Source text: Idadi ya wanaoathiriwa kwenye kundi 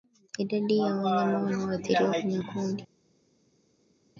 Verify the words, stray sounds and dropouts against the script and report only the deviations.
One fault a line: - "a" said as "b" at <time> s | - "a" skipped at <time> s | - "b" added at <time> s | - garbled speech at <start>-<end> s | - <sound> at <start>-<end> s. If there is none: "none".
- "wanyama" added at 0.8 s